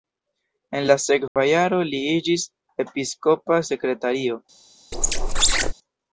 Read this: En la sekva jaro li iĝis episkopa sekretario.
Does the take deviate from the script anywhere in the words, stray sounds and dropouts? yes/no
yes